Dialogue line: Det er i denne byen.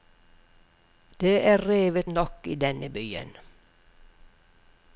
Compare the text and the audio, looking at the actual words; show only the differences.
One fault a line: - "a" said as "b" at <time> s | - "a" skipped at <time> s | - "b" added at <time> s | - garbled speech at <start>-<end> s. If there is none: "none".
- "revet nok" added at 1.7 s